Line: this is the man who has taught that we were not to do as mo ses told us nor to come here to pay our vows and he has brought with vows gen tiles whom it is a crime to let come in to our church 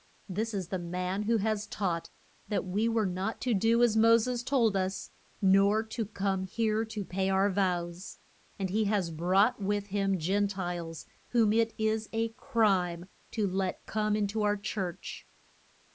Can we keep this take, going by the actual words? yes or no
no